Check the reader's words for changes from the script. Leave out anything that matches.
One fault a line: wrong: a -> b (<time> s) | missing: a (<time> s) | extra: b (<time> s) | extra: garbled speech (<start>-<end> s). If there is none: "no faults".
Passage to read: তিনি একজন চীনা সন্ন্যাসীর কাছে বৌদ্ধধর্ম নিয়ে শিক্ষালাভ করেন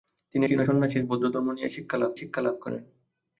missing: একজন (0.4 s)
missing: কাছে (1.0 s)
extra: শিক্ষালাভ (2.2 s)